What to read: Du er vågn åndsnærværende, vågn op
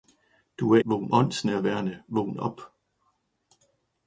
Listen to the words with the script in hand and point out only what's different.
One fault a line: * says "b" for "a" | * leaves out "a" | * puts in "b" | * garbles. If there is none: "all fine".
all fine